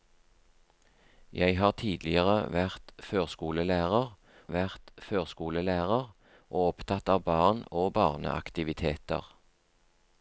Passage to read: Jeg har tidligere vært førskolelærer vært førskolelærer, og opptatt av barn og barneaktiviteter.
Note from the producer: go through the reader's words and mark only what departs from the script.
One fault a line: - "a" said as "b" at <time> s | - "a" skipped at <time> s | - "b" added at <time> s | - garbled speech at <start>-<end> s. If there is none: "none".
none